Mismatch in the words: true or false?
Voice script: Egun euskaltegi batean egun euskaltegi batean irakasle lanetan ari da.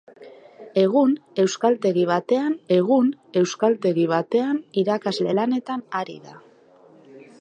false